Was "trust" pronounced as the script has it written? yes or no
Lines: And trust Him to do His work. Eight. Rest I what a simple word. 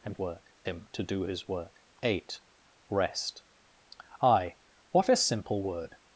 no